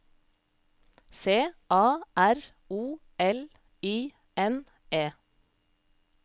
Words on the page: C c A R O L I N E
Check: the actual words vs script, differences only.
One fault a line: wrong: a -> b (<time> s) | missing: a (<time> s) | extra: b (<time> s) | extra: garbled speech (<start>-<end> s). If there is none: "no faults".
missing: c (1.3 s)